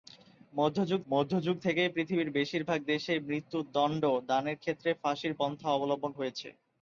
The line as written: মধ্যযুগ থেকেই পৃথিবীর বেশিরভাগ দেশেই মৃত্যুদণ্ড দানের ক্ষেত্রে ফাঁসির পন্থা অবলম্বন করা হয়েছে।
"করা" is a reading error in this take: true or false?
true